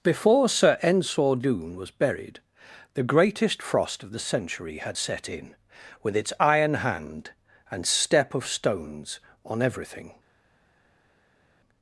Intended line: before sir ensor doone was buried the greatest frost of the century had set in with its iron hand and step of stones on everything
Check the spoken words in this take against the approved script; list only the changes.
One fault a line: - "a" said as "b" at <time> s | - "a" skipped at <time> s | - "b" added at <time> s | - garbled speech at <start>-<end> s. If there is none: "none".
none